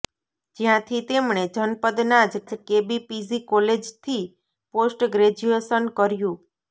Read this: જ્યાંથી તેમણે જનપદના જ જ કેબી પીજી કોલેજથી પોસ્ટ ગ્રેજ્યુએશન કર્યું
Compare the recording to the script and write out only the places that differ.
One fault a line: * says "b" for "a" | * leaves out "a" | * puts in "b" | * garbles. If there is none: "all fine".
all fine